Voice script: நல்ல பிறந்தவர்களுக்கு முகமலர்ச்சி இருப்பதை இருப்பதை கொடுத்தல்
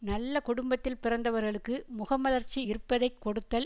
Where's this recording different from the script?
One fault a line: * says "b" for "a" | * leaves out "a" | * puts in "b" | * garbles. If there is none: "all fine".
* puts in "குடும்பத்தில்"
* leaves out "இருப்பதை"